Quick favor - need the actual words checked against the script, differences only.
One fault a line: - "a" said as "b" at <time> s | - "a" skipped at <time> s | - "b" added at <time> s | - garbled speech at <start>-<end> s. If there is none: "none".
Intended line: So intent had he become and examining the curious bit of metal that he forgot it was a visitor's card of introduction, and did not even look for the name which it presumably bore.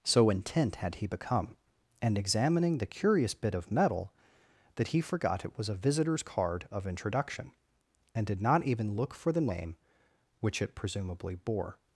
none